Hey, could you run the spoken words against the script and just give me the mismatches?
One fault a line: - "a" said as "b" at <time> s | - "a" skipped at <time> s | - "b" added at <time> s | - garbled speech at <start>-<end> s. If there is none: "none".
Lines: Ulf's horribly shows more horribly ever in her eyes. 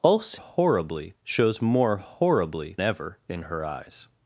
none